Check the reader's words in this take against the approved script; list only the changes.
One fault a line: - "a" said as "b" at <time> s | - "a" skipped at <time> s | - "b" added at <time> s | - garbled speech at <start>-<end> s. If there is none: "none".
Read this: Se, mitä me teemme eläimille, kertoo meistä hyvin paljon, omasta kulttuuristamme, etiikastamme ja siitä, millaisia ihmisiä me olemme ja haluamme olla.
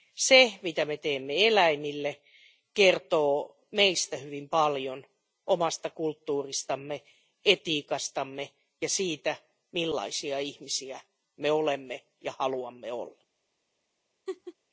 none